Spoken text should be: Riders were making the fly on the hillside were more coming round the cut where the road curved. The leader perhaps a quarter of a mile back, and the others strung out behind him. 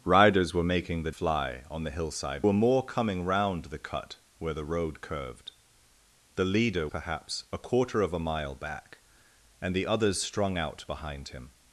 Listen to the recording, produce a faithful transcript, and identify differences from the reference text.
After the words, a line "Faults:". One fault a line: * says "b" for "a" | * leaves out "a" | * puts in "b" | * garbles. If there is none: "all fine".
Riders were making the fly on the hillside were more coming round the cut where the road curved. The leader perhaps a quarter of a mile back, and the others strung out behind him.
Faults:
all fine